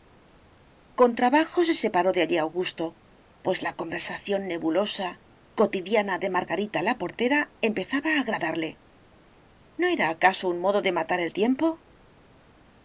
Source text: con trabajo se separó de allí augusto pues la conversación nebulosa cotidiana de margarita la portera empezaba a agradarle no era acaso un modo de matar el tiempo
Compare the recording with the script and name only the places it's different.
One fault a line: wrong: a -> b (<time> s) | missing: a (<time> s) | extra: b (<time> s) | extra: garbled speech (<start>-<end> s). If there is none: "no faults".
no faults